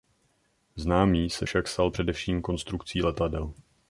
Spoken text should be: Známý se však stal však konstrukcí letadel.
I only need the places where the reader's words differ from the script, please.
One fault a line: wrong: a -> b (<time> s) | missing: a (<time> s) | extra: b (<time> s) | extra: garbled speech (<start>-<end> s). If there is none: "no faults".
wrong: však -> především (1.9 s)